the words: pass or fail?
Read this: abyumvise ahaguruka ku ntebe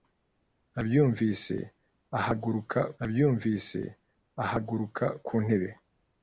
fail